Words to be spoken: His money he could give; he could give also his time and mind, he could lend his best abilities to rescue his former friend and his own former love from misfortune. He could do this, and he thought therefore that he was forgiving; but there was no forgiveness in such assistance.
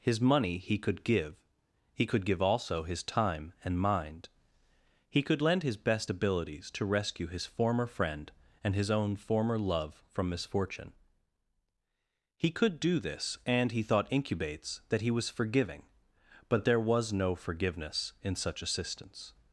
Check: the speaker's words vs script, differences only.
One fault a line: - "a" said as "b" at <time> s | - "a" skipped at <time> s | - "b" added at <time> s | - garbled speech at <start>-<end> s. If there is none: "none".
- "therefore" said as "incubates" at 14.1 s